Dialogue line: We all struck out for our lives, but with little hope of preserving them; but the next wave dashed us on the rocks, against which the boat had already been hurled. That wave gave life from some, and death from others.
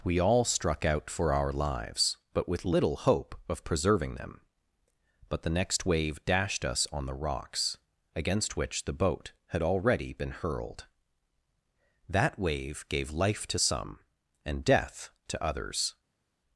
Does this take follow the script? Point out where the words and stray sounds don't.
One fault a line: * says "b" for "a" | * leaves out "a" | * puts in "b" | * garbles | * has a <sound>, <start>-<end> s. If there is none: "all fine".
* says "to" for "from"
* says "to" for "from"